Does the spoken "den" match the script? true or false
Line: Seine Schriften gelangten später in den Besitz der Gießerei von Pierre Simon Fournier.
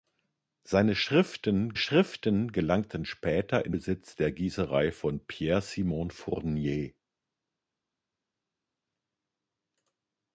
false